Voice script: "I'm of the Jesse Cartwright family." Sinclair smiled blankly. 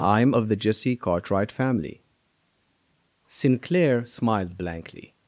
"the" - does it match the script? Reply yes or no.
yes